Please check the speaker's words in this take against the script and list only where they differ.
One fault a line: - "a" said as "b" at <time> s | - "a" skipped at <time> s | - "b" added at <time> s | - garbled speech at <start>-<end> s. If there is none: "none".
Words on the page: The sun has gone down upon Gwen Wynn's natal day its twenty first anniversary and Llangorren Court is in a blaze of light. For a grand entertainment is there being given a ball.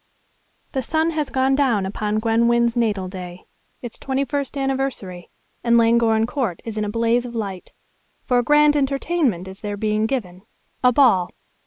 none